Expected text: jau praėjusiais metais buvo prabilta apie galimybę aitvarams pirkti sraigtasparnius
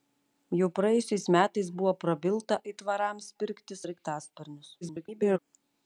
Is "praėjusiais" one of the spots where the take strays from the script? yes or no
no